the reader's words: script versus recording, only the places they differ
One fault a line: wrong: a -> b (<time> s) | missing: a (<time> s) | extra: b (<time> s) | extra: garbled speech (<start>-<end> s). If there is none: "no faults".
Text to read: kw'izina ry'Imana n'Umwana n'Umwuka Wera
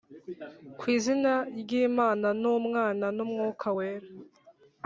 no faults